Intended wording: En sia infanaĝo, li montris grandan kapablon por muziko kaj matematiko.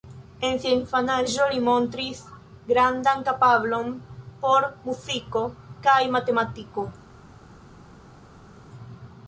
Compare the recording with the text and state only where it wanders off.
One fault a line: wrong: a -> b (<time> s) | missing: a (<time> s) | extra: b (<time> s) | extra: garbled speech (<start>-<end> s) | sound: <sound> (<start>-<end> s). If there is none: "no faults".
no faults